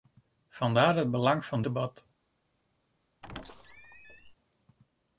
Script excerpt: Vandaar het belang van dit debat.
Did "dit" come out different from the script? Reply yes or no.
yes